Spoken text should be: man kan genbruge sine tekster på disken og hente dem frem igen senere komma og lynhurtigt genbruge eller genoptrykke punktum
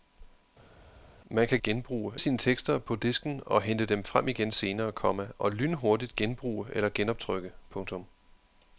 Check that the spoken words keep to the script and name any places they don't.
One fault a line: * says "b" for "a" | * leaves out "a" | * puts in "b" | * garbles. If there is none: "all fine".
all fine